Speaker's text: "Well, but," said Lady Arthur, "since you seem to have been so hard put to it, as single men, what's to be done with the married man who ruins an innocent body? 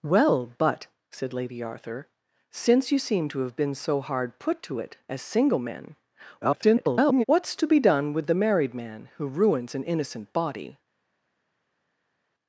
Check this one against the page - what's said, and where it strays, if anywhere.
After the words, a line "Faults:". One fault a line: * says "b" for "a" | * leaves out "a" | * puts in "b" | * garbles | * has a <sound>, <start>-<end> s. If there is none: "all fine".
"Well, but," said Lady Arthur, "since you seem to have been so hard put to it, as single men, [garbled] what's to be done with the married man who ruins an innocent body?
Faults:
* garbles